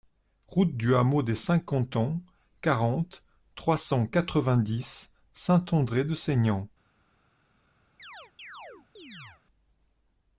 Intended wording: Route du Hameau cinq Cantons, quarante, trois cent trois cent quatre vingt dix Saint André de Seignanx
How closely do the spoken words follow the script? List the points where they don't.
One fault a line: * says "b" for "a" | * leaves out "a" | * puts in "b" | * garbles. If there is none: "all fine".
* puts in "des"
* leaves out "trois cent"